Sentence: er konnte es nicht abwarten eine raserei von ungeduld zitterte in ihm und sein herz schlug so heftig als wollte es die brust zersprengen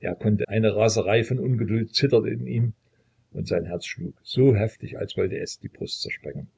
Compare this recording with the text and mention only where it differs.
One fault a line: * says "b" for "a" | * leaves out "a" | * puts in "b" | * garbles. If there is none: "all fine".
* leaves out "es nicht abwarten"